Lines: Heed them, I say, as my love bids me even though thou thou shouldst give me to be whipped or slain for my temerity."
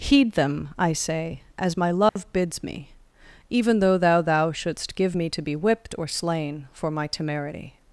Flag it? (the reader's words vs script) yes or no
no